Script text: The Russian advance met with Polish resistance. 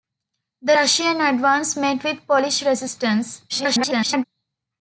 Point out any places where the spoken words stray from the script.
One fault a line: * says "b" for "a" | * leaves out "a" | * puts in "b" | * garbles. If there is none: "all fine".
* garbles